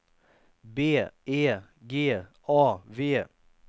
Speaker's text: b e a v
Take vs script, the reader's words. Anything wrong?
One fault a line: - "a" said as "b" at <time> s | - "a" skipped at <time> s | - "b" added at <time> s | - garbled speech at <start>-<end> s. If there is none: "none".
- "g" added at 1.9 s